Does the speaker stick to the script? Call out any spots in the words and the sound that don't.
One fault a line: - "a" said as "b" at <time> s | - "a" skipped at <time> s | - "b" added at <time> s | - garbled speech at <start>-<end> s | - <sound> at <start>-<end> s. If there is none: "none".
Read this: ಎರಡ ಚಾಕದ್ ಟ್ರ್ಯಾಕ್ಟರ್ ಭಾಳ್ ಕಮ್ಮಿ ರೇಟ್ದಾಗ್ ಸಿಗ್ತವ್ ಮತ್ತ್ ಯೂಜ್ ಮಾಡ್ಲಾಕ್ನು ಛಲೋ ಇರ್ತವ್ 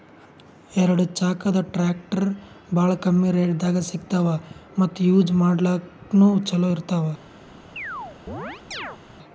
- chirp at 7.8-9.0 s